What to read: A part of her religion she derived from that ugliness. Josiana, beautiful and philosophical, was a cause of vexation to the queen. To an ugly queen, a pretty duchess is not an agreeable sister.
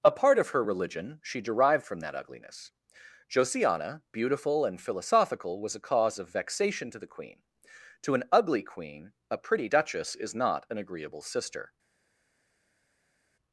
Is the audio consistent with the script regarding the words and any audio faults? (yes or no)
yes